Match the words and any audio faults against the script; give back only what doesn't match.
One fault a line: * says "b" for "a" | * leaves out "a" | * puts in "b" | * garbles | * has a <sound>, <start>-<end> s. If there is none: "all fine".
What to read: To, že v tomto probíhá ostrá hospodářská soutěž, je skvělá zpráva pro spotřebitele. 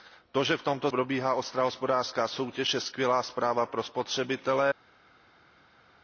all fine